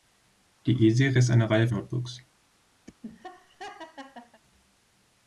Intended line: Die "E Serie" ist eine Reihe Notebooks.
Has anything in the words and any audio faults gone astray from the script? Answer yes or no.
yes